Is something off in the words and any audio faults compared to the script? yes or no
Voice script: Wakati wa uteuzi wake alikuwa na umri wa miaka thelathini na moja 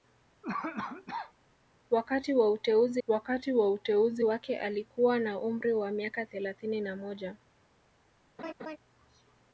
yes